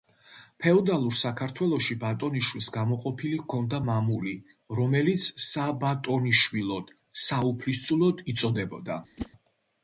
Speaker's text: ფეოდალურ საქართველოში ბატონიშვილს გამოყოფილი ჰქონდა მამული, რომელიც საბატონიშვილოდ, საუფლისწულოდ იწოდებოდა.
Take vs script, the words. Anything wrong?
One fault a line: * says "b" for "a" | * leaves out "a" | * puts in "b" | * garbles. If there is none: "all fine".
all fine